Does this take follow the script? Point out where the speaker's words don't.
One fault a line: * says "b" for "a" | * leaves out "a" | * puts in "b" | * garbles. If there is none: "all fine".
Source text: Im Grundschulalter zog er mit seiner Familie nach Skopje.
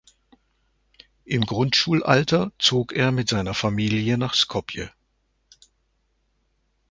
all fine